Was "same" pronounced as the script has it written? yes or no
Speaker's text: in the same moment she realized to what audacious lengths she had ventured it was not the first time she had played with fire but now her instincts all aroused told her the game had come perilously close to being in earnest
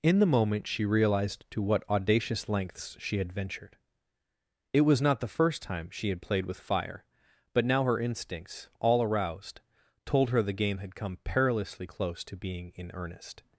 no